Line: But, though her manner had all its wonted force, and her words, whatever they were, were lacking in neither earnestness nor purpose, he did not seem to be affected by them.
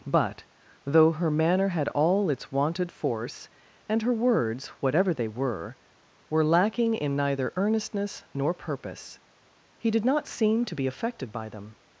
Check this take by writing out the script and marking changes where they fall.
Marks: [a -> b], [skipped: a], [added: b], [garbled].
But, though her manner had all its wonted force, and her words, whatever they were, were lacking in neither earnestness nor purpose, he did not seem to be affected by them.